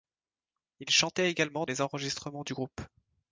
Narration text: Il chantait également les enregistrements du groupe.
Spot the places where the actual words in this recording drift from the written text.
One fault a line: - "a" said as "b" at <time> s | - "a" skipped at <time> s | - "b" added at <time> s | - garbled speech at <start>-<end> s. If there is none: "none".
none